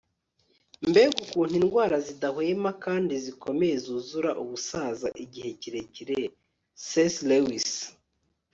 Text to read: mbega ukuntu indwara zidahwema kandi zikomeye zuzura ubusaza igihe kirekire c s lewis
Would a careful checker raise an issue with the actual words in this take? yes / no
no